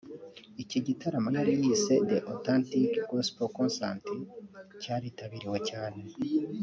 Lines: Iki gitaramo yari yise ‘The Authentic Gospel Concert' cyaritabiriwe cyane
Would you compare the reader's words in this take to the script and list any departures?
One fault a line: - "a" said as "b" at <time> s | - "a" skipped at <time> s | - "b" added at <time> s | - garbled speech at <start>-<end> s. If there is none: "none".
none